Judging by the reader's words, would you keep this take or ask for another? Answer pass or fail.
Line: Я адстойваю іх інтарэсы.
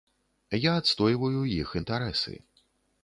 pass